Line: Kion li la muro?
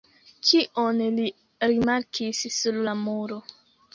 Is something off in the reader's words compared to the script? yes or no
yes